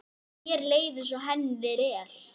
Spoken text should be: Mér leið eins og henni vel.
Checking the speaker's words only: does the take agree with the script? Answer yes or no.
yes